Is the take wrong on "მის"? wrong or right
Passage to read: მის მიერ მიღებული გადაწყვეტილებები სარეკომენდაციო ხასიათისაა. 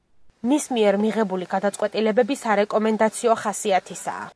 right